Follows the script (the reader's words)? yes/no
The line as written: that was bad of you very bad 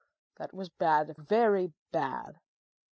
no